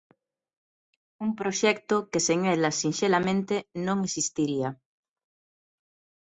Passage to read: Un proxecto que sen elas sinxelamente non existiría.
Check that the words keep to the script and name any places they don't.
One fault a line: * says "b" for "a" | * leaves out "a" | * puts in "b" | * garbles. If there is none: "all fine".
all fine